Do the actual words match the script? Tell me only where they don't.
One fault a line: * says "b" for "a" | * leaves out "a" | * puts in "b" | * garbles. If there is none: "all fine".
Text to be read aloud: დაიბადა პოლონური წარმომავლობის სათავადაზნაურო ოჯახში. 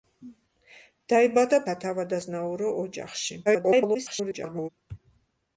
* leaves out "პოლონური წარმომავლობის"
* garbles